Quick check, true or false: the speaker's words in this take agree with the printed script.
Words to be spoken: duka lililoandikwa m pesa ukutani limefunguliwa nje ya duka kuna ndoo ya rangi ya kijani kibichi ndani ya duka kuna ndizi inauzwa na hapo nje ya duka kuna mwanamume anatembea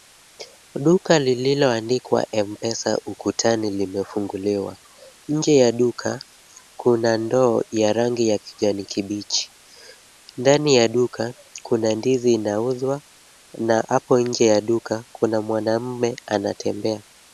true